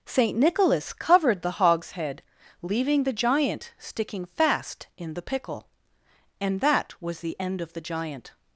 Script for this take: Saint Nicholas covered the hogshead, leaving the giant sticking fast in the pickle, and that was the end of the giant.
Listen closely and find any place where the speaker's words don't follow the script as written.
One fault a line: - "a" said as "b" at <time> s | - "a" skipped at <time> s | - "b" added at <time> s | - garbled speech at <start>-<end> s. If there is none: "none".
none